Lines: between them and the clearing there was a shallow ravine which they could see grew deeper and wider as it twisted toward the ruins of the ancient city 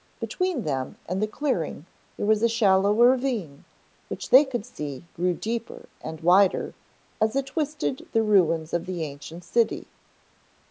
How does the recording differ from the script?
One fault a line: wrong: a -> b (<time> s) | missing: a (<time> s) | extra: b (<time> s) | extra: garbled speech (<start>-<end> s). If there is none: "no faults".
missing: toward (8.1 s)